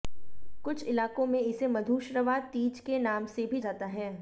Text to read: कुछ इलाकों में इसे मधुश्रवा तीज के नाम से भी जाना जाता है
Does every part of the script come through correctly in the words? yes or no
no